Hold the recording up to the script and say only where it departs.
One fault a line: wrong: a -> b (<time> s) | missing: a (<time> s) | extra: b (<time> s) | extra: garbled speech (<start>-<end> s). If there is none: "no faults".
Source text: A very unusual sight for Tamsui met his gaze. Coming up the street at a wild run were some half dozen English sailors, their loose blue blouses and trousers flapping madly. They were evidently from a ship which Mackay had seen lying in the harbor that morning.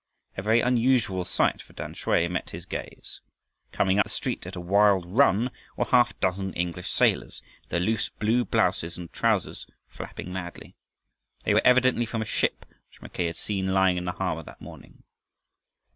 missing: up (4.0 s)
missing: some (5.8 s)